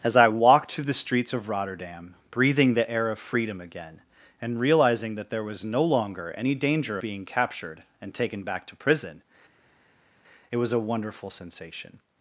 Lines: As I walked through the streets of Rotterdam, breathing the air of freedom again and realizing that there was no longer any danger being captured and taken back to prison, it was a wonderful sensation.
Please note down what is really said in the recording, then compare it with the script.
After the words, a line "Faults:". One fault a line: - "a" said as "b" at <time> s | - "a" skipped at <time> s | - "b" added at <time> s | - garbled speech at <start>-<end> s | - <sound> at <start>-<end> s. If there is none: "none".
As I walked through the streets of Rotterdam, breathing the air of freedom again and realizing that there was no longer any danger being captured and taken back to prison, it was a wonderful sensation.
Faults:
none